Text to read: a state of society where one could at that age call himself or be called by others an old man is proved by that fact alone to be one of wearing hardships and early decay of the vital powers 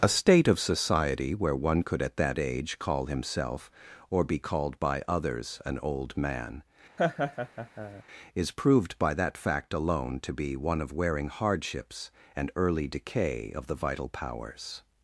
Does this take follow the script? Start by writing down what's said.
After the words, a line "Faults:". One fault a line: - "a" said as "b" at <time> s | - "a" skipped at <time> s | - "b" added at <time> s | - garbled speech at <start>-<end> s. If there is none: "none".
a state of society where one could at that age call himself or be called by others an old man is proved by that fact alone to be one of wearing hardships and early decay of the vital powers
Faults:
none